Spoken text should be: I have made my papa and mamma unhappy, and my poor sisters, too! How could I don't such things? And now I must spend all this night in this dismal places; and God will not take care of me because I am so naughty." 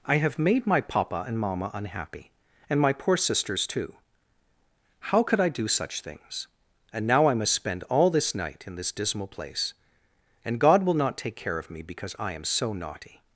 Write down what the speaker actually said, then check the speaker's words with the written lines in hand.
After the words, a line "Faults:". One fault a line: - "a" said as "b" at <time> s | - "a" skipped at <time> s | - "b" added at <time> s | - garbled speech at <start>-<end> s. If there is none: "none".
I have made my papa and mamma unhappy, and my poor sisters, too! How could I do such things? And now I must spend all this night in this dismal place; and God will not take care of me because I am so naughty."
Faults:
- "don't" said as "do" at 5.5 s
- "places" said as "place" at 9.3 s